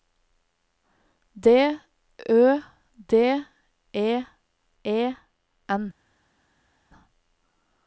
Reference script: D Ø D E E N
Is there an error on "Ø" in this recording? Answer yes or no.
no